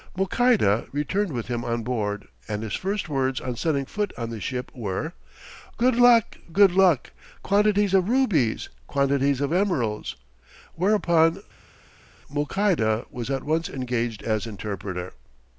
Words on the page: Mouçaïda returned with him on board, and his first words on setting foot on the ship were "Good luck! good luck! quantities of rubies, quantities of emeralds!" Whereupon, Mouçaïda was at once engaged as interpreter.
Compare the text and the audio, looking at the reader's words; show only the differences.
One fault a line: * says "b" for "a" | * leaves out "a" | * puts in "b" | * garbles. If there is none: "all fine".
all fine